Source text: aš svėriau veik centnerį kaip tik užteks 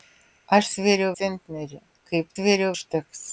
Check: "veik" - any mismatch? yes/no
yes